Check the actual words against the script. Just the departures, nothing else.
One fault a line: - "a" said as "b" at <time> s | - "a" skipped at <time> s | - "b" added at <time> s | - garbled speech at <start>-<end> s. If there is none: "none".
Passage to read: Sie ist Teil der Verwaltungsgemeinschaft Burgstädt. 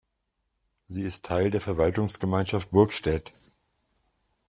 none